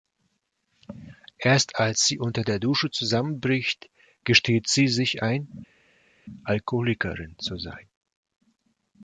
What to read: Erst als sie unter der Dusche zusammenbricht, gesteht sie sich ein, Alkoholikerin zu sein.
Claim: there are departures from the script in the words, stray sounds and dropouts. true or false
false